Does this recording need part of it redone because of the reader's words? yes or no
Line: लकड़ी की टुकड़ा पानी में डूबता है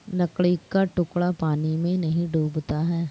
yes